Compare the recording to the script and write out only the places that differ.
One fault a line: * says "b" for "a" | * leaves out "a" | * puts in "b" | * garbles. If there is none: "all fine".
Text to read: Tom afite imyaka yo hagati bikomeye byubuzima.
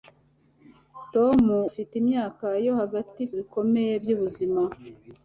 all fine